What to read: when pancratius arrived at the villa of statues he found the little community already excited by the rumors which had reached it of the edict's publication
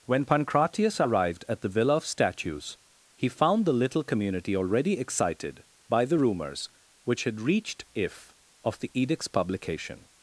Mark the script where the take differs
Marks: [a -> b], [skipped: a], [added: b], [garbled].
when pancratius arrived at the villa of statues he found the little community already excited by the rumors which had reached [it -> if] of the edict's publication